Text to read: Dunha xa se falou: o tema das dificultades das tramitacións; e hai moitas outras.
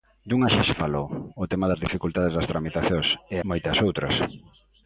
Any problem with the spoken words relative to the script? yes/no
yes